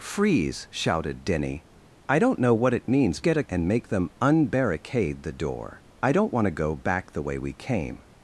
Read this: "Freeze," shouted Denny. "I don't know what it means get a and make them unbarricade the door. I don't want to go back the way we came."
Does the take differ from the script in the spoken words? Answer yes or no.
no